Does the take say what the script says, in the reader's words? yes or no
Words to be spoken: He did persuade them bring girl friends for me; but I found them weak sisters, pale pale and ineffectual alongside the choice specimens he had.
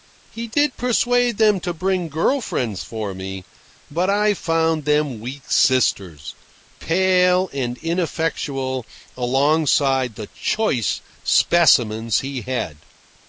no